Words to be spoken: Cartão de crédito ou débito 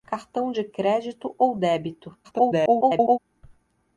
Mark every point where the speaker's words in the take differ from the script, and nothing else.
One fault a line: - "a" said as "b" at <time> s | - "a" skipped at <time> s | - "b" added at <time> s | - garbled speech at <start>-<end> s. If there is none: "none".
- garbled speech at 2.2-3.2 s